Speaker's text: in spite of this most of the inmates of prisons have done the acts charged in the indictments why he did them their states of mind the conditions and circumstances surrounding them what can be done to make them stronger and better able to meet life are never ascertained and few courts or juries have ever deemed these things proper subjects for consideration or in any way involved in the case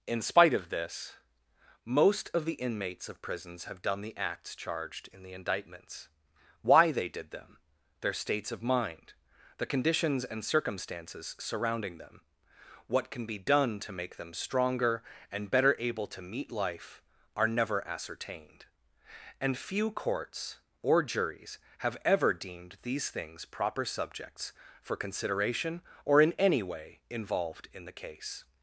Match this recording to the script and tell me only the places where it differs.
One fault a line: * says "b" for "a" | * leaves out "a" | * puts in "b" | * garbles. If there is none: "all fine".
* says "they" for "he"